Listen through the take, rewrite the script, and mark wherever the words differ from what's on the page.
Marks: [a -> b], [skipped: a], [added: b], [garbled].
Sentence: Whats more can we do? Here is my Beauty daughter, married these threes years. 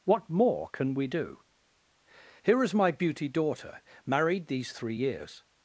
[Whats -> What] more can we do? Here is my Beauty daughter, married these [threes -> three] years.